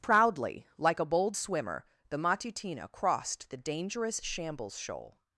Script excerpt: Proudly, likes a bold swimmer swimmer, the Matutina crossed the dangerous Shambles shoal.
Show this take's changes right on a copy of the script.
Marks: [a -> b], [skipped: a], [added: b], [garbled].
Proudly, [likes -> like] a bold swimmer [skipped: swimmer,] the Matutina crossed the dangerous Shambles shoal.